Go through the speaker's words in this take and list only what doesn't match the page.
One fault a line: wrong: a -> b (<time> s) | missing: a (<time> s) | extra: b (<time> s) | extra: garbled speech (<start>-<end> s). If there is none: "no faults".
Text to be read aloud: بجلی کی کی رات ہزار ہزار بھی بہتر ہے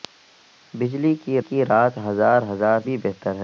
no faults